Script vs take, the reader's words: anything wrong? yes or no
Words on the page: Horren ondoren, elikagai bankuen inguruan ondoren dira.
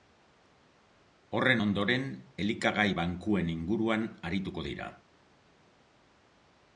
yes